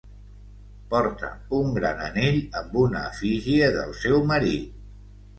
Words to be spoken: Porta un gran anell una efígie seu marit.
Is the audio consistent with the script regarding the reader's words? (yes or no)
no